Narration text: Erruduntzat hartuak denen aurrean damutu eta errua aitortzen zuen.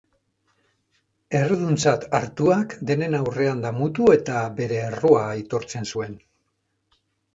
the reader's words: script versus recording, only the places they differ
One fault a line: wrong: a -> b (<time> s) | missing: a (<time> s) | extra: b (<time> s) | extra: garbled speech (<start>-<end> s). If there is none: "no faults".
extra: bere (4.6 s)